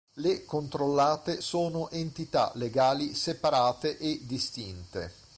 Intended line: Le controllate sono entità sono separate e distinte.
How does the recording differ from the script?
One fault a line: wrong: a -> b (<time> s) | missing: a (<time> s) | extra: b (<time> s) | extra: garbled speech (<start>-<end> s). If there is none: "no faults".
wrong: sono -> legali (2.5 s)